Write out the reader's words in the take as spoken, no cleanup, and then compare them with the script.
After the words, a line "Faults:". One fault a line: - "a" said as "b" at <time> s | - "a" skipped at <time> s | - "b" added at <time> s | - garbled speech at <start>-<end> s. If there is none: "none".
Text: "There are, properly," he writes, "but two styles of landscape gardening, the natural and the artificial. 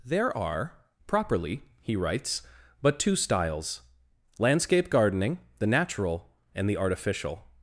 "There are, properly," he writes, "but two styles landscape gardening, the natural and the artificial.
Faults:
- "of" skipped at 3.8 s